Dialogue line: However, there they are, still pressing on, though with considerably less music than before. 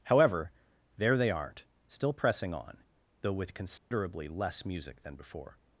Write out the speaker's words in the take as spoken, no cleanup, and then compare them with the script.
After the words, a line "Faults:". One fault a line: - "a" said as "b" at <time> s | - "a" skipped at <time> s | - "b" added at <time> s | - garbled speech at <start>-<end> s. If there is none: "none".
However, there they aren't, still pressing on, though with considerably less music than before.
Faults:
- "are" said as "aren't" at 1.3 s